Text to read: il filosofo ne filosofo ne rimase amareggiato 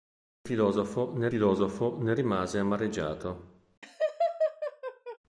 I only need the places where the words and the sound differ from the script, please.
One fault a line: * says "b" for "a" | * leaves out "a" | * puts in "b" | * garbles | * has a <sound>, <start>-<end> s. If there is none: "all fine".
* has a laugh, 3.8-5.2 s